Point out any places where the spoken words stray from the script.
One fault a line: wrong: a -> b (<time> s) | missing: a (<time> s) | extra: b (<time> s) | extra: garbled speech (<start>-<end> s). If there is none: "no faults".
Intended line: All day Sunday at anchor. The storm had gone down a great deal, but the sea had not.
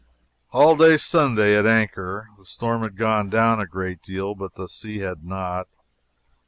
no faults